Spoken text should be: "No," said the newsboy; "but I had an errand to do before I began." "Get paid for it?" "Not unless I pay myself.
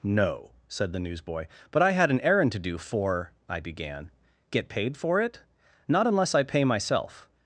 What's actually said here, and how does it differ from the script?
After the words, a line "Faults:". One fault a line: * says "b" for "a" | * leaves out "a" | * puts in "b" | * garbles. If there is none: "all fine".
"No," said the newsboy; "but I had an errand to do for I began." "Get paid for it?" "Not unless I pay myself.
Faults:
* says "for" for "before"